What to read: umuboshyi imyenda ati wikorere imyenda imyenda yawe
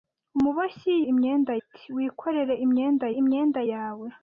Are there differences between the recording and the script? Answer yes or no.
no